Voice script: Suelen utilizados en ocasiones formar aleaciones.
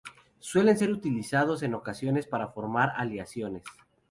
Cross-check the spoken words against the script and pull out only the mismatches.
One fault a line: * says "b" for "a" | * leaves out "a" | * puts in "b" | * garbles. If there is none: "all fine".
* puts in "ser"
* puts in "para"